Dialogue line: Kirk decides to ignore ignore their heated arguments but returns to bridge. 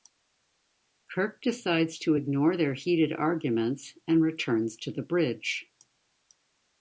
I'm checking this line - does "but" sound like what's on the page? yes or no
no